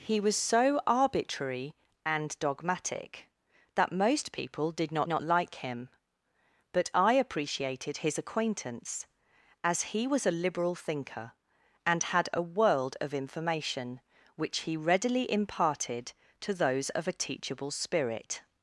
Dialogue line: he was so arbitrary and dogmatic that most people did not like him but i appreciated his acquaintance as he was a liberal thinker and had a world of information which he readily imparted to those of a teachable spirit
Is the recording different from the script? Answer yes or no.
yes